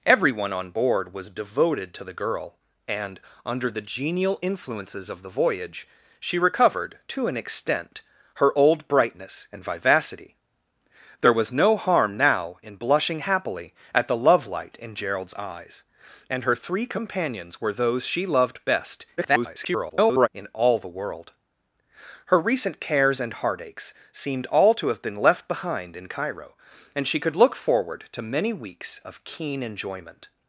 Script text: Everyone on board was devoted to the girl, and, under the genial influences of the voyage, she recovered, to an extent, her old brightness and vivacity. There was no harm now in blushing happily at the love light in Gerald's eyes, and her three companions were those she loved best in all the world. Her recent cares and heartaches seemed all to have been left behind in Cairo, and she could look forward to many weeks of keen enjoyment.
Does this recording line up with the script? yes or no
no